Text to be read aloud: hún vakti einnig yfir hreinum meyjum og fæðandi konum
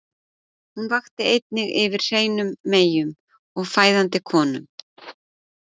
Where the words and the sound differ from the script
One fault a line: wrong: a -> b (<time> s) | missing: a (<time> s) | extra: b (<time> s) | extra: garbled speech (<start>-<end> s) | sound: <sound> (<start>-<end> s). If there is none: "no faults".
no faults